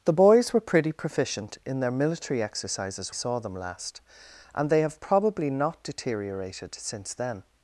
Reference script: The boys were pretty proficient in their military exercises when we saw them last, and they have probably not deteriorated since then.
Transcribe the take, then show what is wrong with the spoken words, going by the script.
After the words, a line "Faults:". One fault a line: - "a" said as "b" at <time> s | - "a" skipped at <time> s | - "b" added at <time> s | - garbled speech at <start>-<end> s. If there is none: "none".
The boys were pretty proficient in their military exercises saw them last, and they have probably not deteriorated since then.
Faults:
- "when we" skipped at 3.1 s